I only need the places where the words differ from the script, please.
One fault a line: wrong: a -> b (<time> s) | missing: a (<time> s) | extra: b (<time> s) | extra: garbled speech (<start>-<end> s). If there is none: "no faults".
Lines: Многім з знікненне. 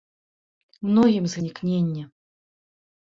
no faults